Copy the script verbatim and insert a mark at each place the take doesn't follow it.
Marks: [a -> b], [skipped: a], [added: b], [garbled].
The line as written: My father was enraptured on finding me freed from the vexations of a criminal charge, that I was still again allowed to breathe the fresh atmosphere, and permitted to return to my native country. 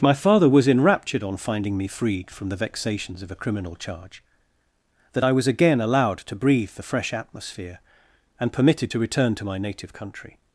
My father was enraptured on finding me freed from the vexations of a criminal charge, that I was [skipped: still] again allowed to breathe the fresh atmosphere, and permitted to return to my native country.